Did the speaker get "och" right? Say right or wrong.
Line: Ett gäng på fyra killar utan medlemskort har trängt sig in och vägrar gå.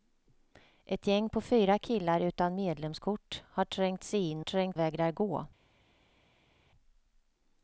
wrong